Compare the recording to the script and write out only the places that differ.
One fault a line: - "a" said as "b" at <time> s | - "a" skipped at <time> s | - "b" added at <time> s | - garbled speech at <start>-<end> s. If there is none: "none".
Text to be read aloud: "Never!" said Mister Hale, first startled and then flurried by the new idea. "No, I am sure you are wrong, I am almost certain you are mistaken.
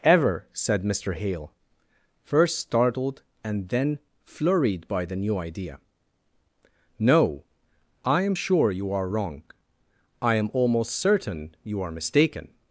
- "Never" said as "Ever" at 0.0 s